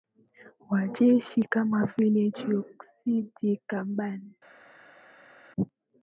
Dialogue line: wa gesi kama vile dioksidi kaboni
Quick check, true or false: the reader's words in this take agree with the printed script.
true